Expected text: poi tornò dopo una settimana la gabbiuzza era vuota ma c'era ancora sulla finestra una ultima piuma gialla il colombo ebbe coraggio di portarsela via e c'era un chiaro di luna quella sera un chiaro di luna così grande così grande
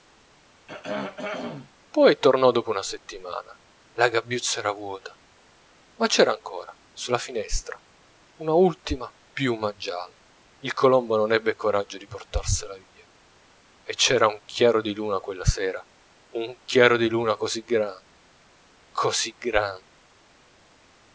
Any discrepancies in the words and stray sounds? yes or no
yes